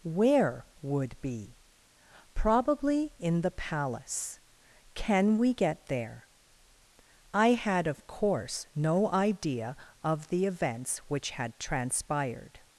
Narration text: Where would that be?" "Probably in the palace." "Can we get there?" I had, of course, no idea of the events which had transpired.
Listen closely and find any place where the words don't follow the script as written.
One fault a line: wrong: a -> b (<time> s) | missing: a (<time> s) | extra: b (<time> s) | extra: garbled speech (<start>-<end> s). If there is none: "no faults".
missing: that (1.1 s)